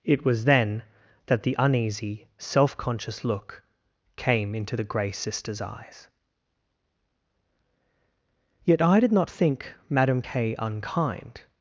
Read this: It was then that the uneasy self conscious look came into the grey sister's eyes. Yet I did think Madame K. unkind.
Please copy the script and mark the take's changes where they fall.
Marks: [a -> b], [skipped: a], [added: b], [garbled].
It was then that the uneasy self conscious look came into the grey sister's eyes. Yet I did [added: not] think Madame K. unkind.